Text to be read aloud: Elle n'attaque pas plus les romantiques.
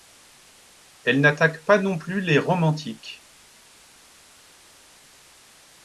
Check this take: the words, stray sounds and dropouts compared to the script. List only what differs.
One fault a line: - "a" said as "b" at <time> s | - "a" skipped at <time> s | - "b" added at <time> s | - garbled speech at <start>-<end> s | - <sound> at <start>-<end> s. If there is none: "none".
- "non" added at 1.8 s